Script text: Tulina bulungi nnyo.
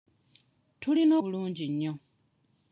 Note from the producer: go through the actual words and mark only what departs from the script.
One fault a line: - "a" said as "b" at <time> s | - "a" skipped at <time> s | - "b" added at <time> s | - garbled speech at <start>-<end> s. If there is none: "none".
none